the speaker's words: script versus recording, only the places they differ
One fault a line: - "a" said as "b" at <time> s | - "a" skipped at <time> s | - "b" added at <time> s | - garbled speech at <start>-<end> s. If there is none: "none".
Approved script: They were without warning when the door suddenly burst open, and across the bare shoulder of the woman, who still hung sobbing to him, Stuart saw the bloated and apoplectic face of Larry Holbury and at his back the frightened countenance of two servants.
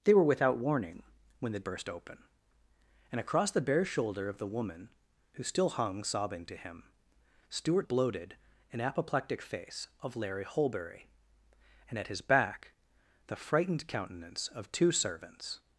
- "door suddenly" skipped at 1.6 s
- "saw the" skipped at 7.9 s